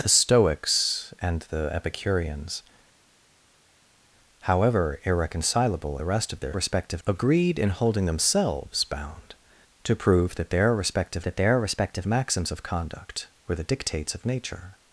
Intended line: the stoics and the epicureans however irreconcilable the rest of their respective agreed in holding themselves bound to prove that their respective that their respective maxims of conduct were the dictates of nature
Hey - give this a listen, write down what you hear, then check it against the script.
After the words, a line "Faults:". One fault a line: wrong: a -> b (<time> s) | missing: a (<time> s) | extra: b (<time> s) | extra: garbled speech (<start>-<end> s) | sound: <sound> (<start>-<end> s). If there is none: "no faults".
the stoics and the epicureans however irreconcilable the rest of their respective agreed in holding themselves bound to prove that their respective that their respective maxims of conduct were the dictates of nature
Faults:
no faults